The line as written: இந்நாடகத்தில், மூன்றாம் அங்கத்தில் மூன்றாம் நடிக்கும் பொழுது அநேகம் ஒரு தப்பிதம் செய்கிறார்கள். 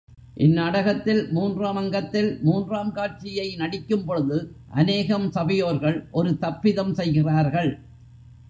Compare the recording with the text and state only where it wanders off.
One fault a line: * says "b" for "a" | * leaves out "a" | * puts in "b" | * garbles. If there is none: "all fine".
* puts in "காட்சியை"
* puts in "சபையோர்கள்"